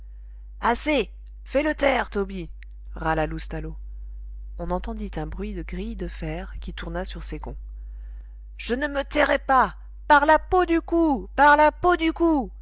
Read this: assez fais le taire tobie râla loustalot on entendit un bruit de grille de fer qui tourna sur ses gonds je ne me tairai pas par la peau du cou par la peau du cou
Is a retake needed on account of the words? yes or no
no